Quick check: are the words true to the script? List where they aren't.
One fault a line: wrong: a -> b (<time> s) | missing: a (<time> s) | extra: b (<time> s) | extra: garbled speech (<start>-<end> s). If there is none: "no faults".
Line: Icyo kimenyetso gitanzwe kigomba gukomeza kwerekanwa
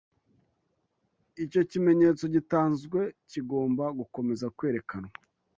no faults